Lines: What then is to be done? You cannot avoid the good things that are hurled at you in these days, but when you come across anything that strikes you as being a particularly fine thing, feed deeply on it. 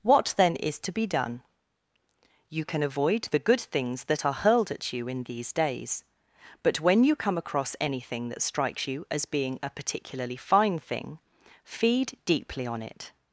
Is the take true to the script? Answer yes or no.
no